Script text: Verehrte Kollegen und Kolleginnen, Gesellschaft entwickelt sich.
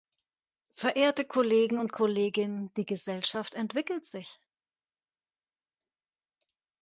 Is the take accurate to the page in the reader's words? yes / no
no